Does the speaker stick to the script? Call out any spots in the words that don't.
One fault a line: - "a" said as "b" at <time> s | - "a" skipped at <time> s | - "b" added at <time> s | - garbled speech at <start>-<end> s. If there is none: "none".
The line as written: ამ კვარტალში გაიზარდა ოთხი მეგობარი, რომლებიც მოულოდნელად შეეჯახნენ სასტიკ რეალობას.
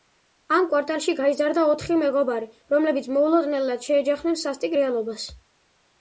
none